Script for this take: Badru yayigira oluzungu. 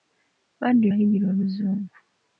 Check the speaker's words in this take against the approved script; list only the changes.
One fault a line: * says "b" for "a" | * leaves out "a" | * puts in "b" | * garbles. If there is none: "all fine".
all fine